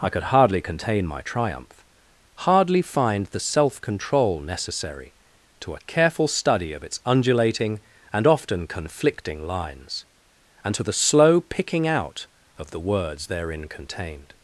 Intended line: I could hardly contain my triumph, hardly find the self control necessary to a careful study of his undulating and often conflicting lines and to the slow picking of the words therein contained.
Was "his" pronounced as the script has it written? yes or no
no